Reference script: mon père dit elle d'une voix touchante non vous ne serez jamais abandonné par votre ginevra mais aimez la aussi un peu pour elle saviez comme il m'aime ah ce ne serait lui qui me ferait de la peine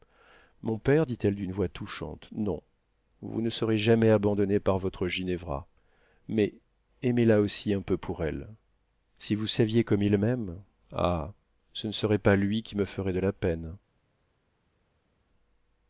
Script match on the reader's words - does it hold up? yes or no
no